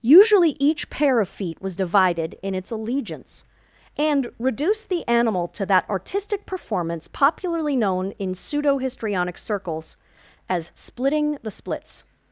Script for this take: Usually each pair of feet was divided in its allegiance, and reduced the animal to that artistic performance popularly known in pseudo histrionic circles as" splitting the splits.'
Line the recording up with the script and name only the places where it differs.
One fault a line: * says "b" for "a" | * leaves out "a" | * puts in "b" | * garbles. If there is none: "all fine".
all fine